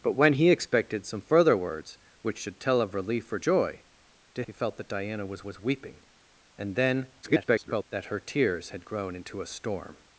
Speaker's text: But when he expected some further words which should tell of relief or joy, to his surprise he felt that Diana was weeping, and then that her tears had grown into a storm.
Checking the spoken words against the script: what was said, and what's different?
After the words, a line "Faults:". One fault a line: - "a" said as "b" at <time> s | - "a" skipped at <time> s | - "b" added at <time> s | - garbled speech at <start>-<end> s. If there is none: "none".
But when he expected some further words which should tell of relief or joy, to he felt that Diana was was weeping, and then [garbled] that her tears had grown into a storm.
Faults:
- "his surprise" skipped at 4.4 s
- "was" added at 5.4 s
- garbled speech at 7.2-7.8 s